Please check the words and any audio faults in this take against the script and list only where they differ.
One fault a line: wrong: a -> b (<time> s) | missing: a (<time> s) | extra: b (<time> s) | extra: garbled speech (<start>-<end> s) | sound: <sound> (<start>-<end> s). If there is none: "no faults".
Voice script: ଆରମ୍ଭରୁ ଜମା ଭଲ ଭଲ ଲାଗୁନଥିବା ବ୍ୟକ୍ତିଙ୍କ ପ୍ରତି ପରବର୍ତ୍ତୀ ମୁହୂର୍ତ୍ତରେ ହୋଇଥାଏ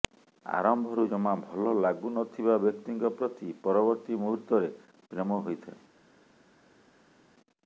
missing: ଭଲ (1.7 s)
extra: ପ୍ରେମ (5.1 s)